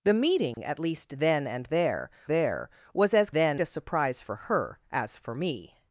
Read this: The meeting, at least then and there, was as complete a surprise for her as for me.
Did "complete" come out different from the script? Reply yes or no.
yes